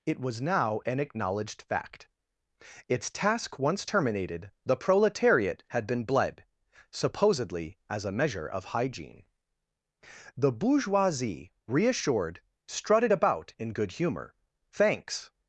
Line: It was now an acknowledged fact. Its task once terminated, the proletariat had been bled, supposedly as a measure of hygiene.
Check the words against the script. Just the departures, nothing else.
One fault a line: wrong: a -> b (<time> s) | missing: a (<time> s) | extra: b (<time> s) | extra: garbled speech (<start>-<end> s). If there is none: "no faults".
extra: The bourgeoisie reassured strutted about in good humor thanks (10.4 s)